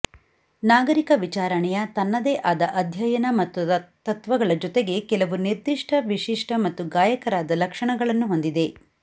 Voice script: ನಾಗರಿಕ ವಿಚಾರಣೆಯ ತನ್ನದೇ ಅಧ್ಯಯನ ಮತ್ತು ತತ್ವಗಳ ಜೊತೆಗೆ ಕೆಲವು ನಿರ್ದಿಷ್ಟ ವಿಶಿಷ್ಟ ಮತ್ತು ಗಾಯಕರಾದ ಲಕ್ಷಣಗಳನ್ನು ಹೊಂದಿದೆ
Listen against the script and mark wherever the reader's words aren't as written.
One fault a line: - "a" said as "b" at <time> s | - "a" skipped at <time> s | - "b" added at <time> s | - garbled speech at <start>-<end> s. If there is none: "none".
- "ಆದ" added at 2.4 s